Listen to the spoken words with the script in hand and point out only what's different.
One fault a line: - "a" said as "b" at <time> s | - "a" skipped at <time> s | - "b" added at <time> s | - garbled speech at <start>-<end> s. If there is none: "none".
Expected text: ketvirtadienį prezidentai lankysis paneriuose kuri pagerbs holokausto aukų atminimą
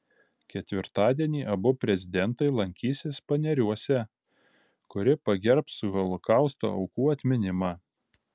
- "abu" added at 1.6 s